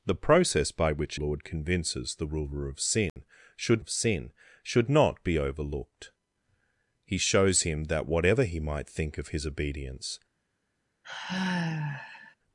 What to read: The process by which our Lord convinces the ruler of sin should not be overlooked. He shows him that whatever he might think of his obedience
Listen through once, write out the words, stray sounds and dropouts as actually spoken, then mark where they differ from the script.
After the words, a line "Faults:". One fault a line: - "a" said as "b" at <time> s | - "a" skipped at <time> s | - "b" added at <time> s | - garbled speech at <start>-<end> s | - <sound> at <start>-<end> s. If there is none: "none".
The process by which Lord convinces the ruler of sin should of sin should not be overlooked. He shows him that whatever he might think of his obedience
Faults:
- "our" skipped at 1.2 s
- dropout at 3.1-3.2 s
- "of sin should" added at 3.8 s
- sigh at 11.0-12.4 s